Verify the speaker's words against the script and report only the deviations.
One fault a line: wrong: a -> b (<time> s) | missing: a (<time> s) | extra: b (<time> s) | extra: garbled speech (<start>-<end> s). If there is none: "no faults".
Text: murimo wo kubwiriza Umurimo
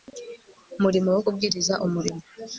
no faults